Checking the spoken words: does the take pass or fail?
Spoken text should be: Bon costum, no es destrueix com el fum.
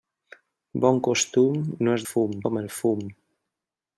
fail